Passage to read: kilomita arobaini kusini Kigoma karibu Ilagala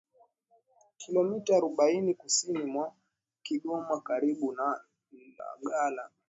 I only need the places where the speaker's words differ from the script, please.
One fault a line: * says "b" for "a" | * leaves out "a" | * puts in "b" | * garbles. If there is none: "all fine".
* puts in "mwa"
* puts in "na"